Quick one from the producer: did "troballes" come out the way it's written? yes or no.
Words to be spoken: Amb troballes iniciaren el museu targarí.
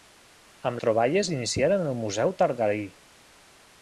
yes